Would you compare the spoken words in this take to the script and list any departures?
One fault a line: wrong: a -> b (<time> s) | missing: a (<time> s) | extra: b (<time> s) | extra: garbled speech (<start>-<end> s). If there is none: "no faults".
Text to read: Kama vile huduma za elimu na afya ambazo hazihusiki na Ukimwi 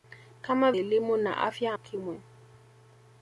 missing: vile huduma za (0.7 s)
missing: ambazo hazihusiki na (1.7 s)